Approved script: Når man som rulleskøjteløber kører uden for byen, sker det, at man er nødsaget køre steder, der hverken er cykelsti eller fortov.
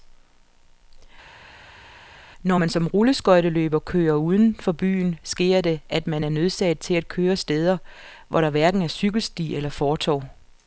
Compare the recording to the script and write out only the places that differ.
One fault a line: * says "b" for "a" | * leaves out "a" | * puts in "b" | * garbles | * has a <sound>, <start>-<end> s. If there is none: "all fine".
* puts in "til at"
* puts in "hvor"